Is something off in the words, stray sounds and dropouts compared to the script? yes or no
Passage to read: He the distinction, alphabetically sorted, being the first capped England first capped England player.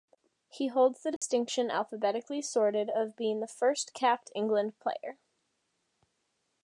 yes